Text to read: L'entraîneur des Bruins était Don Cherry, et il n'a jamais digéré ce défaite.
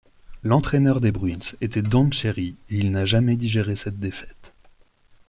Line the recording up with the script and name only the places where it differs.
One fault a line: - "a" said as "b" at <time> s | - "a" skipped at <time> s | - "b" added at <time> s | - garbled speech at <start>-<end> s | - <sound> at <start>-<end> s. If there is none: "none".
- "ce" said as "cette" at 3.8 s